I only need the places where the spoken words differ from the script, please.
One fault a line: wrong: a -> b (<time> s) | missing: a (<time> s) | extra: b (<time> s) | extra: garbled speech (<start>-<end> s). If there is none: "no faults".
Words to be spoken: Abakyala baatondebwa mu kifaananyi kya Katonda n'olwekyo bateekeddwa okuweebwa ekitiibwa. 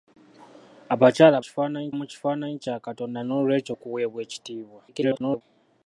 wrong: baatondebwa -> kifaananyi (1.4 s)
missing: bateekeddwa (3.7 s)
extra: garbled speech (4.9-5.4 s)